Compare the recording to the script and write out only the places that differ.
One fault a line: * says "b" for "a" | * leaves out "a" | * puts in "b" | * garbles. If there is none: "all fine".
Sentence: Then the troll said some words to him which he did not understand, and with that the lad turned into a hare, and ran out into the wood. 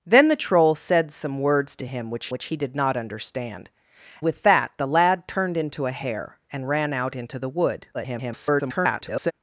* puts in "which"
* leaves out "and"
* garbles